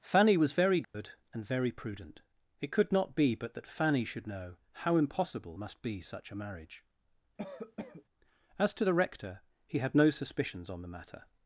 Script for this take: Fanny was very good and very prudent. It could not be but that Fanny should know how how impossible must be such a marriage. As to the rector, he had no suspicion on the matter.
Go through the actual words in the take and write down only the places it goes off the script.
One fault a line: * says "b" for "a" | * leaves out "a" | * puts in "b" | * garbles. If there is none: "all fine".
* leaves out "how"
* says "suspicions" for "suspicion"